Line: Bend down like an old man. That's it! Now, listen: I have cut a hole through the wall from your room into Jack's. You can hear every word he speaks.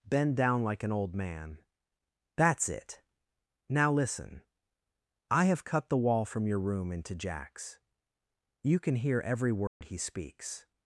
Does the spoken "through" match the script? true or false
false